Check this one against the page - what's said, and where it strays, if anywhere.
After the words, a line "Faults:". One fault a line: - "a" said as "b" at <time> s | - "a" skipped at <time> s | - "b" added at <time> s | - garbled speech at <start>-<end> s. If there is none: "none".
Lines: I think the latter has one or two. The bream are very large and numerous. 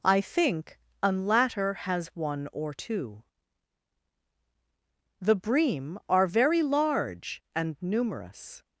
I think an latter has one or two. The bream are very large and numerous.
Faults:
- "the" said as "an" at 1.0 s